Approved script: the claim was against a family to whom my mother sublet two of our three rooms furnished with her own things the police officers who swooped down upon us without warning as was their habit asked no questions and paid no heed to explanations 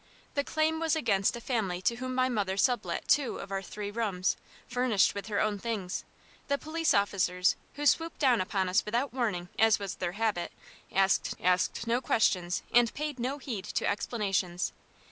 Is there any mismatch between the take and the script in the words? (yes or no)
yes